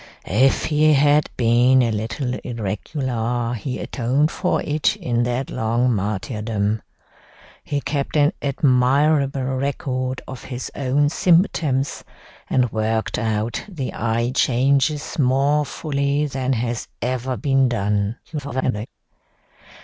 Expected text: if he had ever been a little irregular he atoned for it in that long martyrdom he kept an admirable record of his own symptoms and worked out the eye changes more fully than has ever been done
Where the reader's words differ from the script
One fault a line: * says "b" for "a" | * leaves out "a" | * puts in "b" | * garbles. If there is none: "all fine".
* leaves out "ever"
* garbles